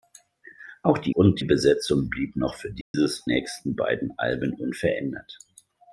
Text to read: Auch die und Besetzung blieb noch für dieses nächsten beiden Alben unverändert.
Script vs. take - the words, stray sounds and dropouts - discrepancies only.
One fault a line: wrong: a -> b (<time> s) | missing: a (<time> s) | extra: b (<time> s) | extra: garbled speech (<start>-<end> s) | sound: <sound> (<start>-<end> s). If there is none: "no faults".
sound: dropout (2.8-2.9 s)